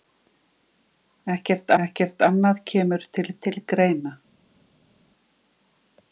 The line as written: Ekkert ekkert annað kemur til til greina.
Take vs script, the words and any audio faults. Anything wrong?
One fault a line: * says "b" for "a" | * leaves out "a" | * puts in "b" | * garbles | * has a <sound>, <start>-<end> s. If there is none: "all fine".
all fine